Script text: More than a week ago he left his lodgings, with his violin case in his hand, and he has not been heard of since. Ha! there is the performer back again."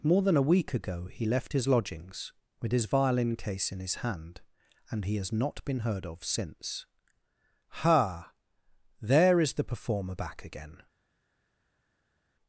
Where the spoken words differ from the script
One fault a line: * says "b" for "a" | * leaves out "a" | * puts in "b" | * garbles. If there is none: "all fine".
all fine